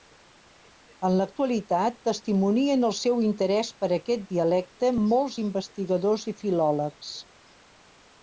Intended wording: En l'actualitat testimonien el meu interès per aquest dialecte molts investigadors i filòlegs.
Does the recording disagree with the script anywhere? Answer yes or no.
yes